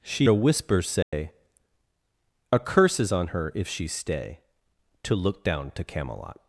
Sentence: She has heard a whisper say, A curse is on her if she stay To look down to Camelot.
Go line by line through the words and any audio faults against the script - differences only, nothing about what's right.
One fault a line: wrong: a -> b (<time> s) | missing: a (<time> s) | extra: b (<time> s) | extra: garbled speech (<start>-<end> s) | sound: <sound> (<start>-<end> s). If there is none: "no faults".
missing: has heard (0.3 s)
sound: dropout (1.0-1.1 s)